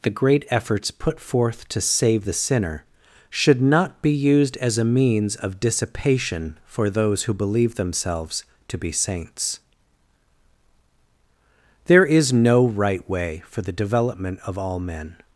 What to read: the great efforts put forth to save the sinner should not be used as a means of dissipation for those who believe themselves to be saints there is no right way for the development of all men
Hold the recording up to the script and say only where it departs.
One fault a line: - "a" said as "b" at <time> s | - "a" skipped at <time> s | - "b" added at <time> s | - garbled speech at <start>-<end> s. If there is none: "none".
none